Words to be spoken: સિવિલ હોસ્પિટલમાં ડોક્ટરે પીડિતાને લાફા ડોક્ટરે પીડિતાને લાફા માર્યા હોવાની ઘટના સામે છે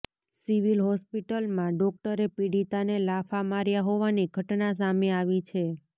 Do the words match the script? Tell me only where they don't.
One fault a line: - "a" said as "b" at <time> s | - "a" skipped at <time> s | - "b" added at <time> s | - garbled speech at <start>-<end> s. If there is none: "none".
- "ડોક્ટરે પીડિતાને લાફા" skipped at 3.5 s
- "આવી" added at 5.2 s